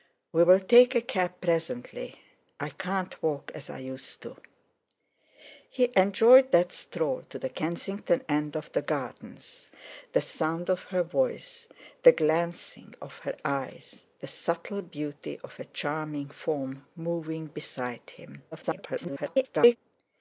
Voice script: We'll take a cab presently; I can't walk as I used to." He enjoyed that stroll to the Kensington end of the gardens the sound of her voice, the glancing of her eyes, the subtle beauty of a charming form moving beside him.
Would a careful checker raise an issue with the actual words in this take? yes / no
yes